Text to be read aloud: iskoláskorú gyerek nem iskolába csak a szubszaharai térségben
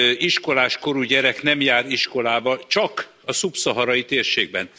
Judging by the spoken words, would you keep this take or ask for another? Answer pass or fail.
fail